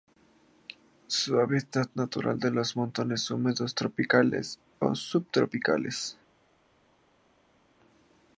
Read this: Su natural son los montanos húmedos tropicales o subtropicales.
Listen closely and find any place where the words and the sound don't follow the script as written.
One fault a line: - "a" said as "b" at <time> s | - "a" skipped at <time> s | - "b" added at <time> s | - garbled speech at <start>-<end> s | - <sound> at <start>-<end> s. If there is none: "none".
- "hábitat" added at 1.4 s